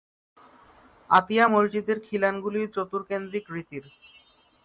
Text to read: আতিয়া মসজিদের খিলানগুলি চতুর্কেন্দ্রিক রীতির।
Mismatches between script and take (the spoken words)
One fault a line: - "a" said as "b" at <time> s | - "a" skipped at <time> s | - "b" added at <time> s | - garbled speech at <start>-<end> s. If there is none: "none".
none